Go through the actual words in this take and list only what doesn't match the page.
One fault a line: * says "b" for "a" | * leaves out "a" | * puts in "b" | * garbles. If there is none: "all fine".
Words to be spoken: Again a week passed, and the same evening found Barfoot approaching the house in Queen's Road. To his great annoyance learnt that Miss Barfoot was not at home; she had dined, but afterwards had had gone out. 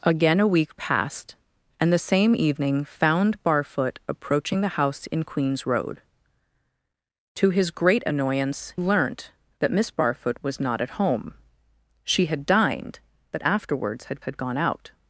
all fine